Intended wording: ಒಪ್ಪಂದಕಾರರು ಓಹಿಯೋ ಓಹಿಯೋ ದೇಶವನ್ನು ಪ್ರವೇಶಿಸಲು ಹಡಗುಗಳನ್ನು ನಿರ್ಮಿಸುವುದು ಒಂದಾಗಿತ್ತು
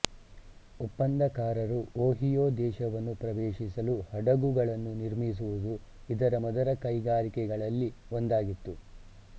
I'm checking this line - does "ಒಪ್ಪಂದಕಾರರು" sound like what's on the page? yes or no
yes